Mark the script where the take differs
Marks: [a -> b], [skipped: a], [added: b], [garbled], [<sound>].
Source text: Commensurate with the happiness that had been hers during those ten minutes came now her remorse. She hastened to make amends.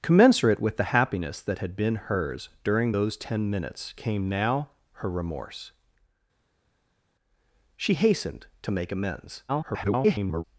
Commensurate with the happiness that had been hers during those ten minutes came now her remorse. She hastened to make amends. [garbled]